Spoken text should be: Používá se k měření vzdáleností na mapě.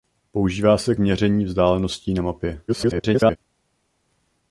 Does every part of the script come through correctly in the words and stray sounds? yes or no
no